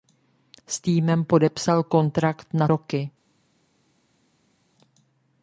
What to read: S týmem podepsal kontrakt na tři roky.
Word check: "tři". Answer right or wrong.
wrong